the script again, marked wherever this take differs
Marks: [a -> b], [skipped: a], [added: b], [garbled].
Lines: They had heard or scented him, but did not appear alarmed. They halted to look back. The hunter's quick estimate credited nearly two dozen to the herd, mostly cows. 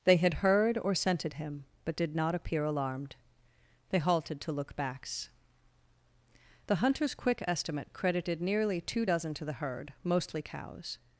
They had heard or scented him, but did not appear alarmed. They halted to look [back. -> backs] The hunter's quick estimate credited nearly two dozen to the herd, mostly cows.